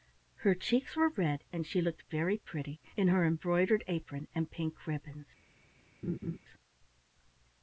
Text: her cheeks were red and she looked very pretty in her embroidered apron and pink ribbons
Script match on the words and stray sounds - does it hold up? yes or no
no